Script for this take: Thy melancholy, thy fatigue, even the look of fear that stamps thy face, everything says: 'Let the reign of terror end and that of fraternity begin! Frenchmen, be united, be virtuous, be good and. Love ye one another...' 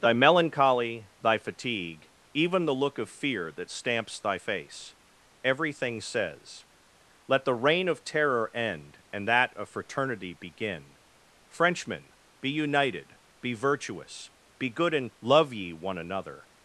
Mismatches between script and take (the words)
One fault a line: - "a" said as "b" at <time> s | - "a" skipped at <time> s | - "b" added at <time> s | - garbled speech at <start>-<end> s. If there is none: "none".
none